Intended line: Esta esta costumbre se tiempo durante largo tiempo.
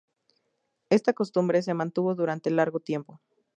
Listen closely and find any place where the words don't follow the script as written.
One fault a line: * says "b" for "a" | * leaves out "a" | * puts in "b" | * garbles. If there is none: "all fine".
* leaves out "esta"
* says "mantuvo" for "tiempo"